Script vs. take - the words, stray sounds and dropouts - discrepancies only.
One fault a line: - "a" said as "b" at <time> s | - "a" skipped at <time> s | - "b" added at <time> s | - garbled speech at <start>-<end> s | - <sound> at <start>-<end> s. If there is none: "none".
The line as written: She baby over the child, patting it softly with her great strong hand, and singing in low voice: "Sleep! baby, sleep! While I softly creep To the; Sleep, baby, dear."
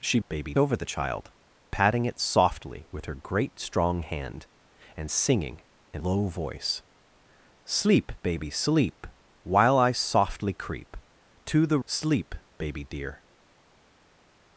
none